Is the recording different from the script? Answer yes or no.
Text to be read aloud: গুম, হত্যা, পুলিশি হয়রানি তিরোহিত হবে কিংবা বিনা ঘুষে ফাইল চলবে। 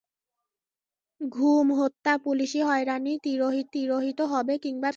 yes